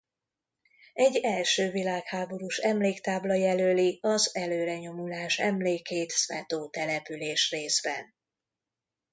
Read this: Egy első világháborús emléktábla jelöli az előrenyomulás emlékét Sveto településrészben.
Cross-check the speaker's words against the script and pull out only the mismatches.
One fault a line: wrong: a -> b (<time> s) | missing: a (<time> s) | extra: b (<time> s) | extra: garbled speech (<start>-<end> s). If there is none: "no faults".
no faults